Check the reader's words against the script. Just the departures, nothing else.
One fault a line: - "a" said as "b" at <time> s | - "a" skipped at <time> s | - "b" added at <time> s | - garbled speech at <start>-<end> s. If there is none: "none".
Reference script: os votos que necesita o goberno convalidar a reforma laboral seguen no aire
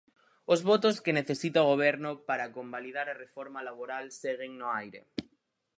- "para" added at 2.3 s